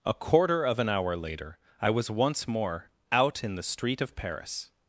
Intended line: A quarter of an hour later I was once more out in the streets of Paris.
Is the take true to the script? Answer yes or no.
no